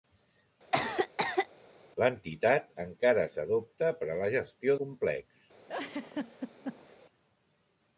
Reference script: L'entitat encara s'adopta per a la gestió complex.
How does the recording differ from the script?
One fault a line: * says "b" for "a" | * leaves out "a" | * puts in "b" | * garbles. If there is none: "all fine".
all fine